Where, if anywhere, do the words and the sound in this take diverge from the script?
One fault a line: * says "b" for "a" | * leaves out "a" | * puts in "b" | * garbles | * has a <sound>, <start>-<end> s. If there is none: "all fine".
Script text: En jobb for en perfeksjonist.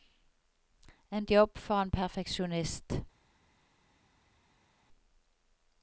all fine